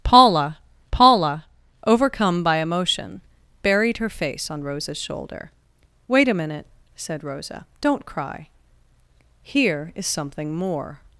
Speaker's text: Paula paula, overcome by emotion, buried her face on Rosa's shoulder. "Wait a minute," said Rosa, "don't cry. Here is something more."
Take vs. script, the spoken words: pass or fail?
pass